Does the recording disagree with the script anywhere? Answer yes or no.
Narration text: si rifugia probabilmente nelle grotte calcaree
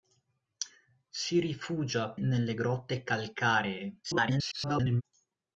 yes